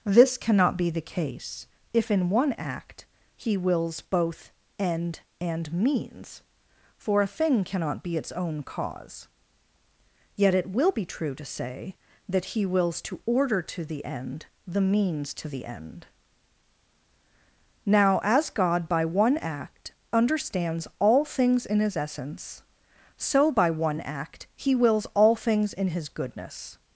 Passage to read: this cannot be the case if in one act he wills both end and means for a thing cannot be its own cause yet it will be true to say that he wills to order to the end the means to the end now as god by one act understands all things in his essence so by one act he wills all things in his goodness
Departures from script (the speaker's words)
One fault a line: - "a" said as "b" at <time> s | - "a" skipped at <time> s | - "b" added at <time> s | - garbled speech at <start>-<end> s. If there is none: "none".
none